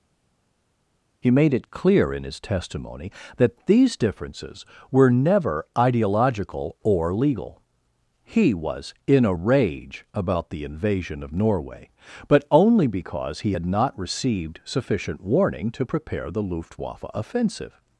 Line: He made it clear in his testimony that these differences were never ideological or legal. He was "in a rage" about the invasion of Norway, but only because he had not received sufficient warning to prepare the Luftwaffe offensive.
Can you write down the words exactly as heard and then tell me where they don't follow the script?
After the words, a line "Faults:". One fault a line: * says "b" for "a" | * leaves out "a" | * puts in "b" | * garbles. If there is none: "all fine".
He made it clear in his testimony that these differences were never ideological or legal. He was "in a rage" about the invasion of Norway, but only because he had not received sufficient warning to prepare the Luftwaffe offensive.
Faults:
all fine